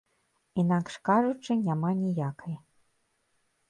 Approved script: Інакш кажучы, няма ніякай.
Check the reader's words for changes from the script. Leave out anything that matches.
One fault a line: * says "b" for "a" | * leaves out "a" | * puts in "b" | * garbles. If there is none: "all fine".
all fine